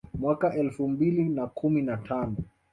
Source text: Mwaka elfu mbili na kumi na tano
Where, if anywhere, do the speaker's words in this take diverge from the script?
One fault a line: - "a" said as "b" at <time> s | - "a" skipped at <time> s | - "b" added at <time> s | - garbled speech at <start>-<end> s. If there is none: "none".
none